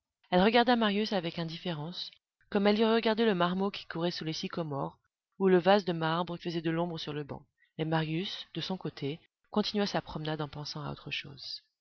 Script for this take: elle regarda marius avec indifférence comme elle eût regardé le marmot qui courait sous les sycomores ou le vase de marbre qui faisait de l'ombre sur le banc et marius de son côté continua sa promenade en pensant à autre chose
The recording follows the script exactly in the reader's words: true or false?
false